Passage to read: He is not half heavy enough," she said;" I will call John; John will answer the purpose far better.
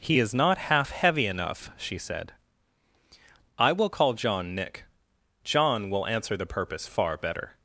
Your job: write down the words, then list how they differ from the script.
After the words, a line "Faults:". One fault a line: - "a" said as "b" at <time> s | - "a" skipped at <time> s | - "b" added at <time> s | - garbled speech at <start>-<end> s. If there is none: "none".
He is not half heavy enough," she said;" I will call John; nick John will answer the purpose far better.
Faults:
- "nick" added at 4.5 s